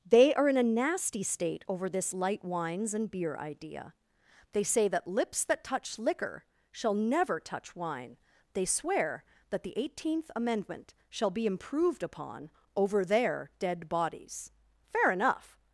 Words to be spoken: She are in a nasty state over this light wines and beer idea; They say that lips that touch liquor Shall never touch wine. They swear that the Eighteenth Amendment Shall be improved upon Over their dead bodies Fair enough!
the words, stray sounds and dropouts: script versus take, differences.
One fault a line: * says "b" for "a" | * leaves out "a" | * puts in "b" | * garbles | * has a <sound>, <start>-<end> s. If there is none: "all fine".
* says "They" for "She"